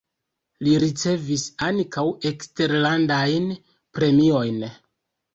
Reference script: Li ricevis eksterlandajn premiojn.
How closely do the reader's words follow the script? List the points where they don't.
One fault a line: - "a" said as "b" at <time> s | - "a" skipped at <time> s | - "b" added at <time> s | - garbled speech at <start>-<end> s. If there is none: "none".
- "ankaŭ" added at 1.7 s